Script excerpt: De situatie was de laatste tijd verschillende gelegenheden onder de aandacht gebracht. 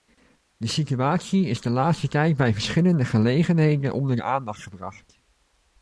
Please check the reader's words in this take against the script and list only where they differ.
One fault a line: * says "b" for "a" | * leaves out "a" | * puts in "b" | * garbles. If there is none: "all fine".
* says "is" for "was"
* puts in "bij"